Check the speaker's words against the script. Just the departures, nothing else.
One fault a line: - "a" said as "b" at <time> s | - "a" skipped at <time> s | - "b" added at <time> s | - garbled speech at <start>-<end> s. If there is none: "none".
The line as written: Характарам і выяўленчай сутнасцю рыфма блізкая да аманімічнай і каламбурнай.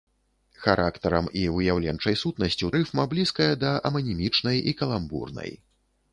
none